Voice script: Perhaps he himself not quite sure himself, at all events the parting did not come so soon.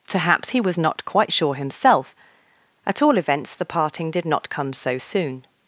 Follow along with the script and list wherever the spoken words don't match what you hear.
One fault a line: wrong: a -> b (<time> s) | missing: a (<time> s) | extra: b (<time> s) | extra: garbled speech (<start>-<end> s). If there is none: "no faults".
wrong: himself -> was (0.6 s)